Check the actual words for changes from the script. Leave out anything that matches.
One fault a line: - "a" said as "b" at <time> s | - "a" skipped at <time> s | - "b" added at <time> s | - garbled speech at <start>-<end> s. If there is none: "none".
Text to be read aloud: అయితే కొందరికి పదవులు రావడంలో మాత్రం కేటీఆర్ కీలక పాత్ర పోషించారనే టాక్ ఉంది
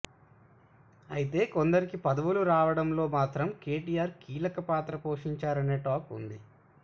none